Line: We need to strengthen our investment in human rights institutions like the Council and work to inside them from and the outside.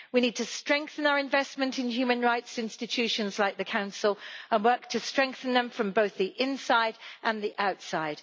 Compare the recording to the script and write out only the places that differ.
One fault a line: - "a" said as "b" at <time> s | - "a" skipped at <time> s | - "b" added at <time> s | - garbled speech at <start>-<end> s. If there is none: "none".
- "inside" said as "strengthen" at 5.0 s
- "both the inside" added at 5.9 s